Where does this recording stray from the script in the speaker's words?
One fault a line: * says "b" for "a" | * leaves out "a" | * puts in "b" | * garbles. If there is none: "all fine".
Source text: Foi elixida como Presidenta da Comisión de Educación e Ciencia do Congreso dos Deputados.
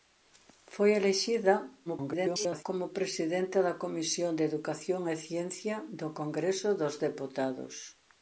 * garbles